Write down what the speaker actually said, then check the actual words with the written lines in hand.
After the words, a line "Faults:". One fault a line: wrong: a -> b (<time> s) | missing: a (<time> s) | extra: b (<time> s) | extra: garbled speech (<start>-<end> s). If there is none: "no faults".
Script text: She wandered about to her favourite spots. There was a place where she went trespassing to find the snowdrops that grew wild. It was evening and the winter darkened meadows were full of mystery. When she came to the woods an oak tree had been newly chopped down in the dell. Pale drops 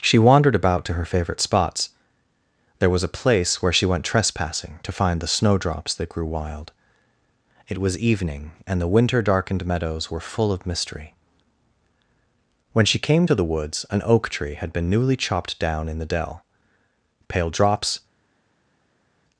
She wandered about to her favourite spots. There was a place where she went trespassing to find the snowdrops that grew wild. It was evening and the winter darkened meadows were full of mystery. When she came to the woods an oak tree had been newly chopped down in the dell. Pale drops
Faults:
no faults